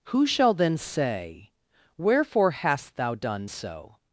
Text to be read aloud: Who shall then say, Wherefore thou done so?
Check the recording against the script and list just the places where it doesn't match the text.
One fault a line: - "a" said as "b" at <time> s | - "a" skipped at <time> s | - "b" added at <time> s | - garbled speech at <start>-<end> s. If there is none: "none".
- "hast" added at 2.5 s